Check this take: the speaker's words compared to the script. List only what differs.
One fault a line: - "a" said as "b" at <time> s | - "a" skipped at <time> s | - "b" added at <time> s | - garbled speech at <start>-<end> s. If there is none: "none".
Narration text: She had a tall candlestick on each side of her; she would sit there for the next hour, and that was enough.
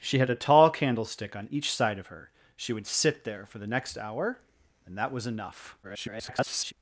- garbled speech at 5.8-6.7 s